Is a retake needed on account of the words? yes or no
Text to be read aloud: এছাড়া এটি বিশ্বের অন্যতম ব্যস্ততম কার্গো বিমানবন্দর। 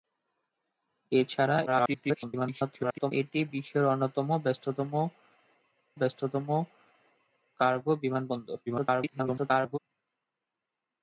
yes